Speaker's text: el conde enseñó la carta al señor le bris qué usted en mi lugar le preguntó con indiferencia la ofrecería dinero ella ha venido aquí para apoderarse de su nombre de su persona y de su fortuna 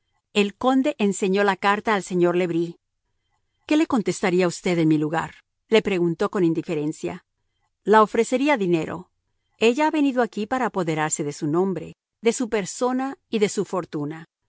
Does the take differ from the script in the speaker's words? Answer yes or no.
yes